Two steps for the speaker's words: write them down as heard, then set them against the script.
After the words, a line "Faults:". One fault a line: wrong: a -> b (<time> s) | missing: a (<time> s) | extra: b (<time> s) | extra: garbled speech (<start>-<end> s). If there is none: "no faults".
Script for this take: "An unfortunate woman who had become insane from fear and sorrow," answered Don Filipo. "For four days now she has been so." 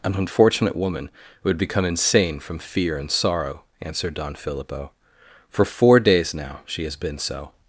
"An unfortunate woman who had become insane from fear and sorrow," answered Don Filipo. "For four days now she has been so."
Faults:
no faults